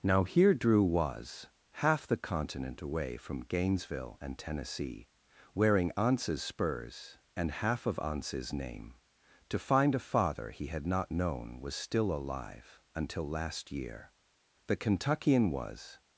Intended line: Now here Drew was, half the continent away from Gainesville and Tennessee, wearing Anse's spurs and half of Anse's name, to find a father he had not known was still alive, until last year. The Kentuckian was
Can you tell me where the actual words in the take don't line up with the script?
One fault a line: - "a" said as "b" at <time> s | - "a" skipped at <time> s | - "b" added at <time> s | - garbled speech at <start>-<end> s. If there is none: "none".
none